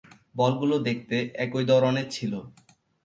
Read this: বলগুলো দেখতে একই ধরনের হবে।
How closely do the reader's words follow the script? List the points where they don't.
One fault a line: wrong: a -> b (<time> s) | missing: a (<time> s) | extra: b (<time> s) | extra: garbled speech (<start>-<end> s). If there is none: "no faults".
wrong: হবে -> ছিল (2.1 s)